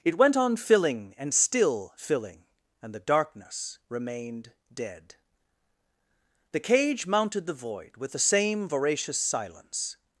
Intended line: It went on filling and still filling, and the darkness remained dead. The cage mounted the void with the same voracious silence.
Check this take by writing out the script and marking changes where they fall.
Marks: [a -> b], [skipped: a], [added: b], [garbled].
It went on filling and still filling, and the darkness remained dead. The cage mounted the void with the same voracious silence.